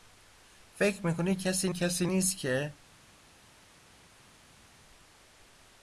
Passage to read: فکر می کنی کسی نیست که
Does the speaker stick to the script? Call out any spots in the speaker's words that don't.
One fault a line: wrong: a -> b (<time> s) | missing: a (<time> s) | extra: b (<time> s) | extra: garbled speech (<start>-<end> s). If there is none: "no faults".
extra: کسی (1.7 s)